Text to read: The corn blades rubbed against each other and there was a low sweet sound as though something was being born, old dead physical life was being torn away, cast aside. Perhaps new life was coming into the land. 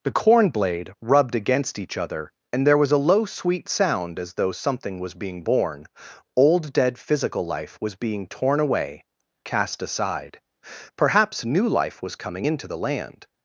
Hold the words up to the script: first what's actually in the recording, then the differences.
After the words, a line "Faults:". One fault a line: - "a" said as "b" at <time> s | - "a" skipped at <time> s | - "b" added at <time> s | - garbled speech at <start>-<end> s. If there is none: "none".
The corn blade rubbed against each other and there was a low sweet sound as though something was being born, old dead physical life was being torn away, cast aside. Perhaps new life was coming into the land.
Faults:
- "blades" said as "blade" at 0.5 s